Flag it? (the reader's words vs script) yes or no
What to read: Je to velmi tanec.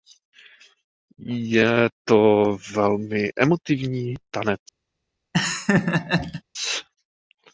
yes